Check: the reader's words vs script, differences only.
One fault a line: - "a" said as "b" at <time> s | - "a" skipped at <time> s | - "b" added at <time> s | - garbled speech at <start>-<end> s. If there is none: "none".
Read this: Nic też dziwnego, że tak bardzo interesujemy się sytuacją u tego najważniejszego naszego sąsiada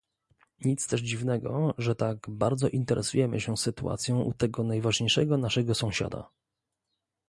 none